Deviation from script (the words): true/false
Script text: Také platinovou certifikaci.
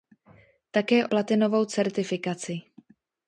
false